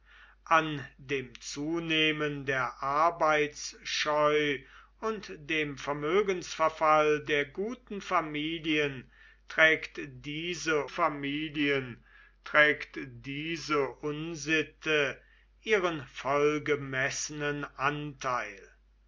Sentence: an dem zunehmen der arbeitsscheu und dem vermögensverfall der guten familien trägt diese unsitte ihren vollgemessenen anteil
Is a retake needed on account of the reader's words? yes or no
yes